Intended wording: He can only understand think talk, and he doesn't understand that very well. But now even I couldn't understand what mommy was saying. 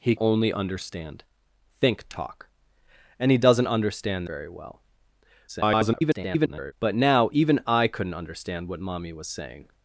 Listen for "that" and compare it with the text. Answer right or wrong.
wrong